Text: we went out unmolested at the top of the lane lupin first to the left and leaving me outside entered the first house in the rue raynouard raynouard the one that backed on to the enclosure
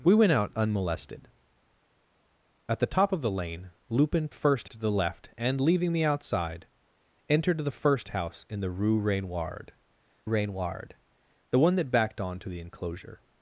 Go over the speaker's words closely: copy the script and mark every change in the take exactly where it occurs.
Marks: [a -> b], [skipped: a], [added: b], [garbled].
we went out unmolested at the top of the lane lupin first to the left and leaving me outside entered the first house in the rue raynouard raynouard the one that backed on to the enclosure